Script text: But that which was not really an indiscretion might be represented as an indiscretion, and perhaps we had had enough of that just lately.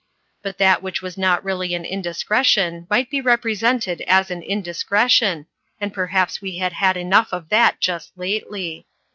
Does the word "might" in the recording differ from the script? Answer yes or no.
no